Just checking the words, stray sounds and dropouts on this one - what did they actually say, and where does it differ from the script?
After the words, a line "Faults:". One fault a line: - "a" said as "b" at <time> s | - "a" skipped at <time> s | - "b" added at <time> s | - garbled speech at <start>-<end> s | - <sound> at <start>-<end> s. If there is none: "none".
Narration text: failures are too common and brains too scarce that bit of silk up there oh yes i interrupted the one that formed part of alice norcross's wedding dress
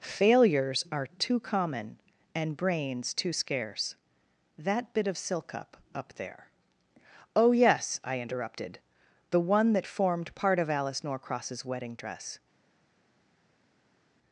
failures are too common and brains too scarce that bit of silk up up there oh yes i interrupted the one that formed part of alice norcross's wedding dress
Faults:
- "up" added at 5.9 s